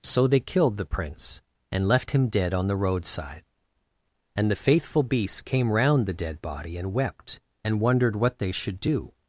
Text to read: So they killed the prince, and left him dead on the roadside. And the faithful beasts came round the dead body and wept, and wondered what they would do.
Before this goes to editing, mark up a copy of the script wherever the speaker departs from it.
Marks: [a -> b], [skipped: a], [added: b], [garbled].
So they killed the prince, and left him dead on the roadside. And the faithful beasts came round the dead body and wept, and wondered what they [would -> should] do.